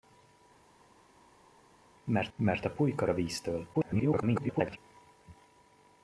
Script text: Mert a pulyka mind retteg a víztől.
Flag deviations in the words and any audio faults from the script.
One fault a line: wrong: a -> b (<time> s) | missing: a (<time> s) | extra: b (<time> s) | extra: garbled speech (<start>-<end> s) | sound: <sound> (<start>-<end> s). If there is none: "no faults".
extra: mert (2.3 s)
missing: mind retteg (3.1 s)
extra: garbled speech (3.7-4.8 s)